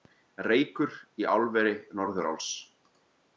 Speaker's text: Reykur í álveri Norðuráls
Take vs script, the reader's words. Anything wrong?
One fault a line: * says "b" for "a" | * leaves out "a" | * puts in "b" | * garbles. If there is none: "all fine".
all fine